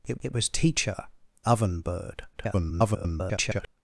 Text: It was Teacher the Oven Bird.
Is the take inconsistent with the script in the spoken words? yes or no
yes